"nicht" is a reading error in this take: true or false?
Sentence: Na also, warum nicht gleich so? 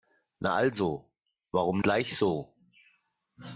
true